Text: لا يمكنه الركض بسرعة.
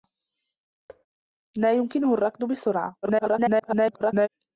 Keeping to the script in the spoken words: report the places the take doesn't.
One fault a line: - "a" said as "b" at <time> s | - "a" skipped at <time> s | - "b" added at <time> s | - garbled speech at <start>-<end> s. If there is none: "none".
- garbled speech at 3.0-4.3 s